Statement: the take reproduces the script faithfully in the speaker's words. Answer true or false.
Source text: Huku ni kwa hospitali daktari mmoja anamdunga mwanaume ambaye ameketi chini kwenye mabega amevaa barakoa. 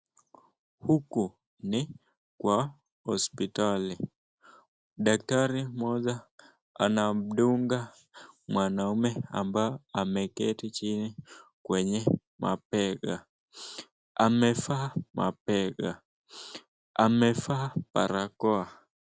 false